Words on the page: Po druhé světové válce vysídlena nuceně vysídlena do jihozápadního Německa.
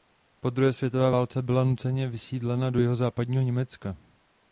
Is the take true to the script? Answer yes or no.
no